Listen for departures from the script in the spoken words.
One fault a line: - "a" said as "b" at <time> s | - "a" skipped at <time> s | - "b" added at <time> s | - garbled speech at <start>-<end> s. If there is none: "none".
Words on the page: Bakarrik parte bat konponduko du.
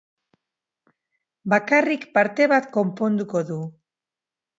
none